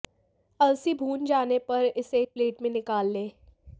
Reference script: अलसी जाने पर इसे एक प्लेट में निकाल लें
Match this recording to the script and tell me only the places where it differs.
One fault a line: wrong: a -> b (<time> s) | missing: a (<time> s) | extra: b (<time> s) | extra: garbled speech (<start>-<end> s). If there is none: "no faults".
extra: भून (0.9 s)